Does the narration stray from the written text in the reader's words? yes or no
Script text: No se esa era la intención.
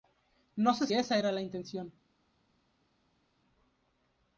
no